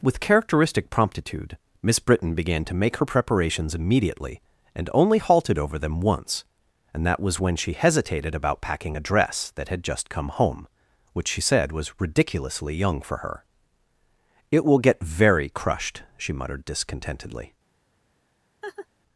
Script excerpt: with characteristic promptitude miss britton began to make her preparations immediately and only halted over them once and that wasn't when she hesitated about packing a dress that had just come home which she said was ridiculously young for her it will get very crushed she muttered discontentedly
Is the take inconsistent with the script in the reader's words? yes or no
yes